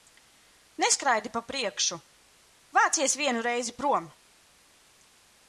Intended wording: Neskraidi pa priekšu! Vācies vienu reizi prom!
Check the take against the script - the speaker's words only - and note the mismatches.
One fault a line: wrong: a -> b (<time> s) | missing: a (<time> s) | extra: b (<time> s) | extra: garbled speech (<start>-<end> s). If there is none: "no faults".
no faults